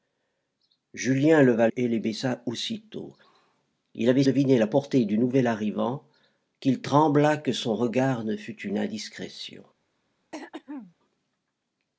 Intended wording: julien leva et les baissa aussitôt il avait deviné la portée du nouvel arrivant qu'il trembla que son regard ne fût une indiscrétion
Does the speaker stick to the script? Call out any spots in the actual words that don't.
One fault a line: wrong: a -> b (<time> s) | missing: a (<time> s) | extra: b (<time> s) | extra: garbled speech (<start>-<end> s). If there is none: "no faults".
no faults